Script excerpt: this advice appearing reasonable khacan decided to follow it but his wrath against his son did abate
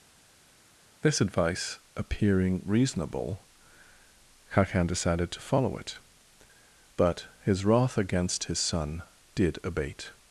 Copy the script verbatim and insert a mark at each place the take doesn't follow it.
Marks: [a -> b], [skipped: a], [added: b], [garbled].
this advice appearing reasonable khacan decided to follow it but his wrath against his son did abate